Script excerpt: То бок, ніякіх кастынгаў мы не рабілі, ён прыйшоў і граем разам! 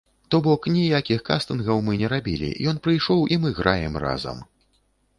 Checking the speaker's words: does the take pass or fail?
fail